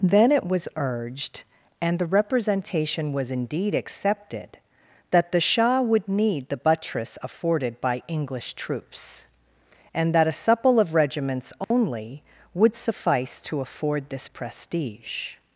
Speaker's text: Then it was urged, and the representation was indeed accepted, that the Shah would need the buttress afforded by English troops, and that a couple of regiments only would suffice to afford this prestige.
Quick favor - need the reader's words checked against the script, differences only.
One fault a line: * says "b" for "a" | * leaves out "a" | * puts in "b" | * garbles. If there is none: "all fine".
* says "supple" for "couple"